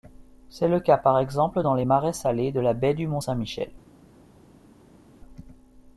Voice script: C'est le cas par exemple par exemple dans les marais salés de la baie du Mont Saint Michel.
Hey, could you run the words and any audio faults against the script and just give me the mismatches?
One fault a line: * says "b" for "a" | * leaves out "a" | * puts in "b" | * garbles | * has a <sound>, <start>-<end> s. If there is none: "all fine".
* leaves out "par exemple"